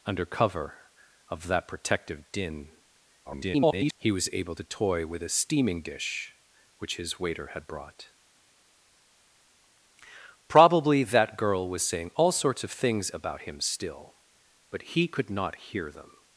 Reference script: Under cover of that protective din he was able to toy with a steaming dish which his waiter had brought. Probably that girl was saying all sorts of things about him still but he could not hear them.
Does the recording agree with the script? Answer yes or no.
no